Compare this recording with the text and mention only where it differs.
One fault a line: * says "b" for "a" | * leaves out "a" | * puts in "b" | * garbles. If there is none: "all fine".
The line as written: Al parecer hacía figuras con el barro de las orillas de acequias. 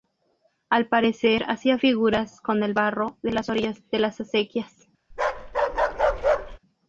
* puts in "las"